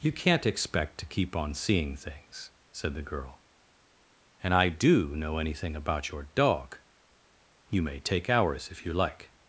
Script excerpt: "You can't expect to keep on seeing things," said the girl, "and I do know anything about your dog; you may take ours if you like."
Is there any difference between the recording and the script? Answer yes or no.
no